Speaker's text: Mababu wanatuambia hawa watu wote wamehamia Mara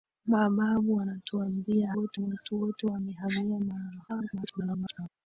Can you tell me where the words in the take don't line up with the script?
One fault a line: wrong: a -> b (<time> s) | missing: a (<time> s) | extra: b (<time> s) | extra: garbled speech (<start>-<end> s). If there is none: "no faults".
wrong: hawa -> wote (1.9 s)
extra: garbled speech (4.1-5.1 s)